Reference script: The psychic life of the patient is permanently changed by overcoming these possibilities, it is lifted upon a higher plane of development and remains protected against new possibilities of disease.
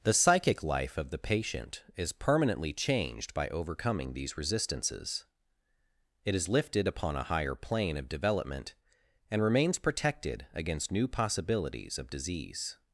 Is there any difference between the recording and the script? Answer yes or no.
yes